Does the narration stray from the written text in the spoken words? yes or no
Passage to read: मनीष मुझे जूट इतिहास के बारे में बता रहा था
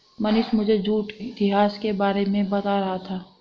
no